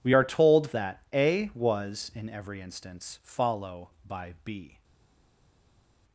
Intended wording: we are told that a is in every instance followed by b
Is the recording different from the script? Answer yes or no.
yes